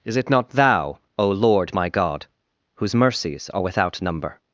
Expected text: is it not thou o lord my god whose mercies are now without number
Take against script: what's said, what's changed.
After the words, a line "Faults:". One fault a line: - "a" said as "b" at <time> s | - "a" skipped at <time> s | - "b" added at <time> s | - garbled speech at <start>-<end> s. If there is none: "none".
is it not thou o lord my god whose mercies are without number
Faults:
- "now" skipped at 3.6 s